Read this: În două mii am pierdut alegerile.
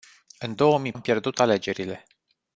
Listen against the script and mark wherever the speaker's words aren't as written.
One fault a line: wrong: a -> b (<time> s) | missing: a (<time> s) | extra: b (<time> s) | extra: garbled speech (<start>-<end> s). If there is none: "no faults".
no faults